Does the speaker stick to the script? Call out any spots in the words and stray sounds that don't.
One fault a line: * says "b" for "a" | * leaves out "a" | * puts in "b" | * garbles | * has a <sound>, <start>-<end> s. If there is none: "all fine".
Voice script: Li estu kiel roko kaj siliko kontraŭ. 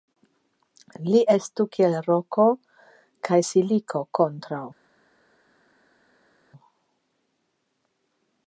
all fine